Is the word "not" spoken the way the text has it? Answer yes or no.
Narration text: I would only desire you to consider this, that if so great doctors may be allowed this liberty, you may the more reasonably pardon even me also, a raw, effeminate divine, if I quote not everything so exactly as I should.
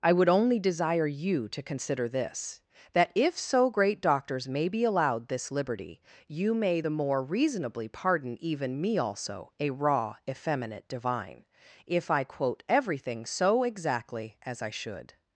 no